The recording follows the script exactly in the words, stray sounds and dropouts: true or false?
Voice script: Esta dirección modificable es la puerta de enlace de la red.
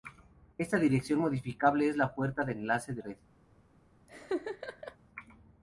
false